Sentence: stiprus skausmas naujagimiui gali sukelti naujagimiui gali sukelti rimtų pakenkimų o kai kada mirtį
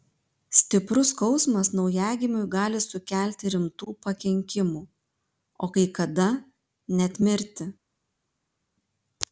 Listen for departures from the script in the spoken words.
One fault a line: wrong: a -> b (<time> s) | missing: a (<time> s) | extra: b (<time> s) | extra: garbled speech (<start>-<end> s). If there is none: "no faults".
missing: naujagimiui gali sukelti (3.5 s)
extra: net (7.0 s)